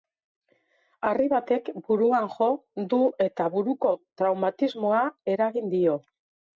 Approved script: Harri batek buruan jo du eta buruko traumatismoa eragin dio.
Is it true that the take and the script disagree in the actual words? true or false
false